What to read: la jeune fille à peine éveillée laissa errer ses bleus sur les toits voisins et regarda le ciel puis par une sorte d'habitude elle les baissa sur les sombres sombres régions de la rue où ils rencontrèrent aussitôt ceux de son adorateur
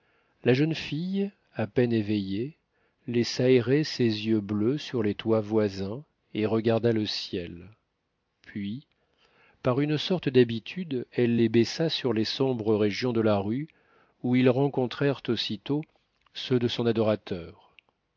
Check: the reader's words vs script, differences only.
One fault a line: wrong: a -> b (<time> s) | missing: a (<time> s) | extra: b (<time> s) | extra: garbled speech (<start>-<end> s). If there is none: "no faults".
extra: yeux (4.2 s)
missing: sombres (12.8 s)